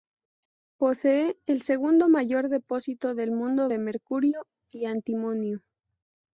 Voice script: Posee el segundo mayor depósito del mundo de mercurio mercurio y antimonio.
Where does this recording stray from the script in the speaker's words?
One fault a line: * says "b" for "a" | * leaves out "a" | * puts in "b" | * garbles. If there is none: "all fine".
* leaves out "mercurio"